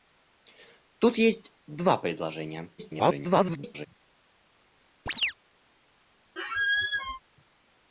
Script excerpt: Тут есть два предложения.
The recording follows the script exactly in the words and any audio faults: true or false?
false